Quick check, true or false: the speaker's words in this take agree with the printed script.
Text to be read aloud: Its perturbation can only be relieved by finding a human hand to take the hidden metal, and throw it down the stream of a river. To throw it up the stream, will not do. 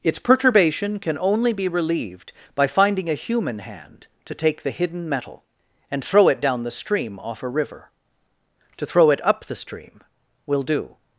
false